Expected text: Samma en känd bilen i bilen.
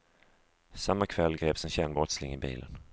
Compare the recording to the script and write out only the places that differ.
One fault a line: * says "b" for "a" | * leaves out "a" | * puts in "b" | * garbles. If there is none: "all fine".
* puts in "kväll greps"
* says "brottsling" for "bilen"